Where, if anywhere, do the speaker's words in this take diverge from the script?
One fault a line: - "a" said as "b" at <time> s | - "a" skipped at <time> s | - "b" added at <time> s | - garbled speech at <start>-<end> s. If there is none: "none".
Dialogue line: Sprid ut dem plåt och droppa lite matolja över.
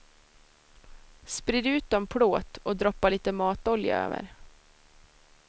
none